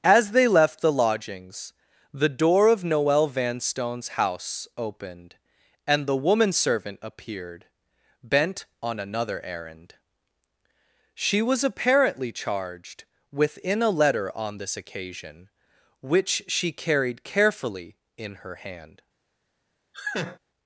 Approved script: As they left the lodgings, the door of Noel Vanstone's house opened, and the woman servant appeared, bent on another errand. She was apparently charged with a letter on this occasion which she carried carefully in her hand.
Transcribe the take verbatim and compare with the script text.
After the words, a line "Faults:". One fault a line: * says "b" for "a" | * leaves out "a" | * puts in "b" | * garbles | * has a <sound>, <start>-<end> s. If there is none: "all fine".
As they left the lodgings, the door of Noel Vanstone's house opened, and the woman servant appeared, bent on another errand. She was apparently charged within a letter on this occasion which she carried carefully in her hand.
Faults:
* says "within" for "with"
* has a laugh, 19.9-20.4 s